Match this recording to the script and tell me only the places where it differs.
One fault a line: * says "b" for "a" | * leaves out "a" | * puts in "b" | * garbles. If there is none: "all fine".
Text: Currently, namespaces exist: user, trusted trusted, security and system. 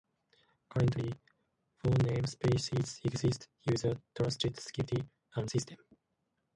* puts in "four"
* leaves out "trusted"